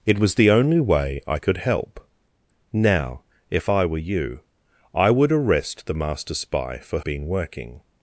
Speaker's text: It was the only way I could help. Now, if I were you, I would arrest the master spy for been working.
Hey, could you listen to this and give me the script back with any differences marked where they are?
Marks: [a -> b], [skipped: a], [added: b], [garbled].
It was the only way I could help. Now, if I were you, I would arrest the master spy for been working.